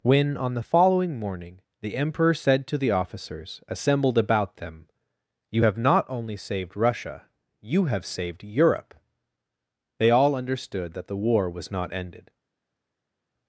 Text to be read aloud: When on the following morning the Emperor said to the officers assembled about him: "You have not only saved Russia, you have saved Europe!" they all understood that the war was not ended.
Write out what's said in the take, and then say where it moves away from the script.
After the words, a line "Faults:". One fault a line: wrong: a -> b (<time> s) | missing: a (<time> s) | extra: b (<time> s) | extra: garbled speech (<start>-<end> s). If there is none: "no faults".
When on the following morning the Emperor said to the officers assembled about them: "You have not only saved Russia, you have saved Europe!" they all understood that the war was not ended.
Faults:
wrong: him -> them (4.6 s)